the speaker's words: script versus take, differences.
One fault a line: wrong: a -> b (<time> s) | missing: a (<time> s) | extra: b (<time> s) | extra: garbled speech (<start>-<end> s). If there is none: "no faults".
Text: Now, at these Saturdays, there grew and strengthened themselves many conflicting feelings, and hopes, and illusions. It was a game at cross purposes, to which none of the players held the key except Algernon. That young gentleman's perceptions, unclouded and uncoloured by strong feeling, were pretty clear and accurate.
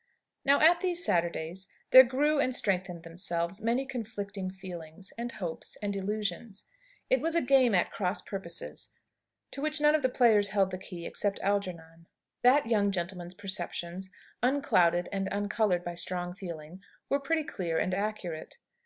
no faults